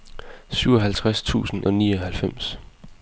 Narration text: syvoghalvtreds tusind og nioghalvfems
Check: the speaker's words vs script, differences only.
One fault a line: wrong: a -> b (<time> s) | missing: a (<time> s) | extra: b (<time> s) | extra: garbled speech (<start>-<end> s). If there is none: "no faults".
no faults